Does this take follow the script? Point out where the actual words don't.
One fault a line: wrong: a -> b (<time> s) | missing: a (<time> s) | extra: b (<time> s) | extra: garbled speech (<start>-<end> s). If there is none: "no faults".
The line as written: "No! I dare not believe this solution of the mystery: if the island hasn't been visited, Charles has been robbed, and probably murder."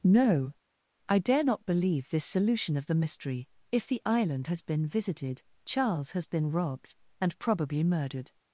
wrong: hasn't -> has (4.5 s)
wrong: murder -> murdered (7.8 s)